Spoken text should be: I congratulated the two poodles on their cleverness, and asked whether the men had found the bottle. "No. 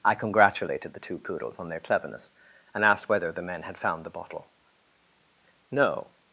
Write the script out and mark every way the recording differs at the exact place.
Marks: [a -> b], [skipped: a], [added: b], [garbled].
I congratulated the two poodles on their cleverness, and asked whether the men had found the bottle. "No.